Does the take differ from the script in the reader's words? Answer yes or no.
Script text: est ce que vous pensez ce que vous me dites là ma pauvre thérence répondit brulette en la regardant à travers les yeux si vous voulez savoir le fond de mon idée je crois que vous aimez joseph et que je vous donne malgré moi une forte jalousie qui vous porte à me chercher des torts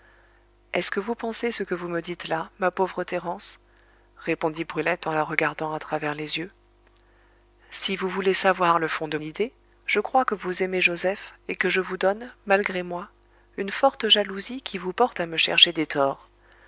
yes